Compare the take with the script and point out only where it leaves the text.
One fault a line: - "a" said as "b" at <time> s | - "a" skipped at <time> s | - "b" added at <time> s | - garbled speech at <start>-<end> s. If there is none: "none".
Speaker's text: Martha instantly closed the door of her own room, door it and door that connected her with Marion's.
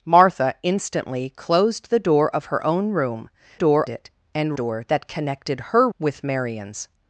none